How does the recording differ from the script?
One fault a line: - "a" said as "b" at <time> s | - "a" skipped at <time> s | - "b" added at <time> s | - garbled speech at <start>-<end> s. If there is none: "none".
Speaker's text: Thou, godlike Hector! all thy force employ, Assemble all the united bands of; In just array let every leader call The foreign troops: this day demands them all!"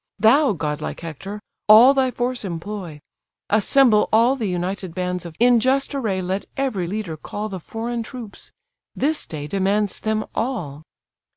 none